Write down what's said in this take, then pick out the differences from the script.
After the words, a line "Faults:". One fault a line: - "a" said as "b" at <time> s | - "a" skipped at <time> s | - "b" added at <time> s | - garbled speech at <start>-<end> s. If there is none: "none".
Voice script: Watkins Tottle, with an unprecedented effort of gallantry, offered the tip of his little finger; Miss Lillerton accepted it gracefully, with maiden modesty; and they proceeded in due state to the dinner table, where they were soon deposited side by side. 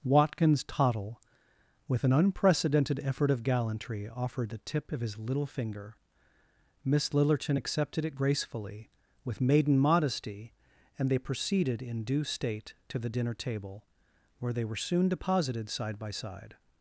Watkins Tottle, with an unprecedented effort of gallantry, offered the tip of his little finger; Miss Lillerton accepted it gracefully, with maiden modesty; and they proceeded in due state to the dinner table, where they were soon deposited side by side.
Faults:
none